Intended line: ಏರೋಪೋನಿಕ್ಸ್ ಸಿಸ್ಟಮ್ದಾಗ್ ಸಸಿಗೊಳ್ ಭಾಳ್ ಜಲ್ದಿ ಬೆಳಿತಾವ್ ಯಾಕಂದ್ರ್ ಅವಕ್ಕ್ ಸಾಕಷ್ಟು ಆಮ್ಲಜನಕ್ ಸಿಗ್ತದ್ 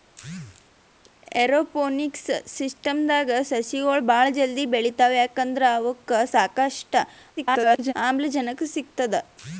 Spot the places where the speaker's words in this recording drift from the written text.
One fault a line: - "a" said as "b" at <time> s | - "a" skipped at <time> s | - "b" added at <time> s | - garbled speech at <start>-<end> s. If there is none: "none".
- garbled speech at 7.4-7.9 s